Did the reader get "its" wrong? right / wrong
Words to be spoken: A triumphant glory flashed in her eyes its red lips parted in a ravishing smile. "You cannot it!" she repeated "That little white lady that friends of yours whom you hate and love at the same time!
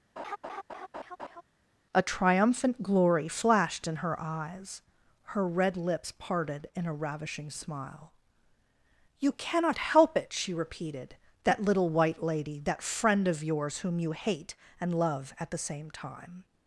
wrong